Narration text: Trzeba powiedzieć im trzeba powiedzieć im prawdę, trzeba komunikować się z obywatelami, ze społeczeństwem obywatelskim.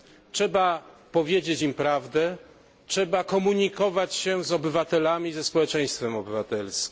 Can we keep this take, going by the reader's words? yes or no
no